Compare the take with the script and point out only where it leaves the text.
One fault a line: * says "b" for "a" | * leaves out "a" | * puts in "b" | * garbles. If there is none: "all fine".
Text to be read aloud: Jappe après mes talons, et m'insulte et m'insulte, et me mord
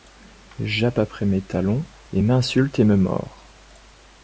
* leaves out "m'insulte et"